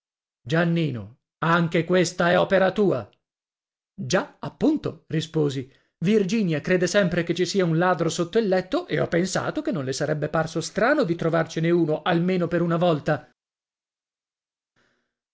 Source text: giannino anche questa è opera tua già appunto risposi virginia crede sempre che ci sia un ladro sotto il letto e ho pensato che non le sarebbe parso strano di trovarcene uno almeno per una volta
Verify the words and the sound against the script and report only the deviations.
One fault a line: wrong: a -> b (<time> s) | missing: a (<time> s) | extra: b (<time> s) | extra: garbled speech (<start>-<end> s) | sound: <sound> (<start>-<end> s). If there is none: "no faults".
no faults